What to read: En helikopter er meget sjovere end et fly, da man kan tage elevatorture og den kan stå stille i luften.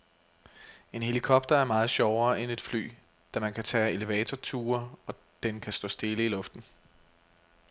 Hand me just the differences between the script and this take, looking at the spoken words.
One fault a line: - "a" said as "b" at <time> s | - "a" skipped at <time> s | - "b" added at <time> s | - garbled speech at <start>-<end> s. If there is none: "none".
none